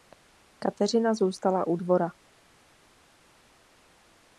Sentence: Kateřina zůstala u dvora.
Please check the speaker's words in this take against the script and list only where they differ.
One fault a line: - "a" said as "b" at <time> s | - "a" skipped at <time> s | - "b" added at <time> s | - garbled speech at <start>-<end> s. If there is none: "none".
none